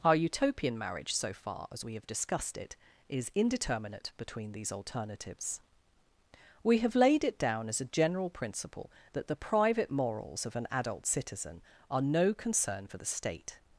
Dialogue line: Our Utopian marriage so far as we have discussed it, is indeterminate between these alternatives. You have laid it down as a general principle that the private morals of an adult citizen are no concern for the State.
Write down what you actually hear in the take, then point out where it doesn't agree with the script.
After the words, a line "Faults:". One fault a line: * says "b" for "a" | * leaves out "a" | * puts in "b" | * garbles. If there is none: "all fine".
Our Utopian marriage so far as we have discussed it, is indeterminate between these alternatives. We have laid it down as a general principle that the private morals of an adult citizen are no concern for the State.
Faults:
* says "We" for "You"